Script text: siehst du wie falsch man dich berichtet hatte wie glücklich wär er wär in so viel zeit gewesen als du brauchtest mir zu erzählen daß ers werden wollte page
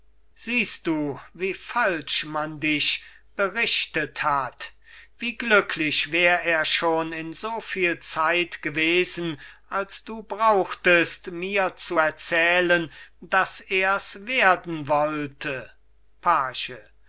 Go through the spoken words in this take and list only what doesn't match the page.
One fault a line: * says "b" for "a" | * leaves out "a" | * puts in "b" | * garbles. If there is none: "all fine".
* says "hat" for "hatte"
* says "schon" for "wär"